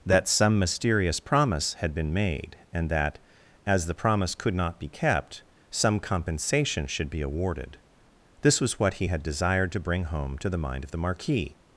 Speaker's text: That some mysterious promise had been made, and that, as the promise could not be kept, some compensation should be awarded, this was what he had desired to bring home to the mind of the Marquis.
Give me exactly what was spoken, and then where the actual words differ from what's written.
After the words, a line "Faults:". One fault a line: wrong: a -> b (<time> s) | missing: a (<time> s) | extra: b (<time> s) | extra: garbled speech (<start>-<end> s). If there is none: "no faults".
That some mysterious promise had been made, and that, as the promise could not be kept, some compensation should be awarded, this was what he had desired to bring home to the mind of the Marquis.
Faults:
no faults